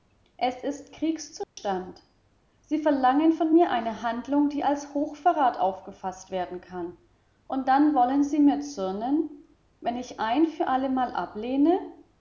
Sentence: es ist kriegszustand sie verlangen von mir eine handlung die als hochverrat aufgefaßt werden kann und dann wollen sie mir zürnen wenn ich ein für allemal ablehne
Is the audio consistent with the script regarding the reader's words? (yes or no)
yes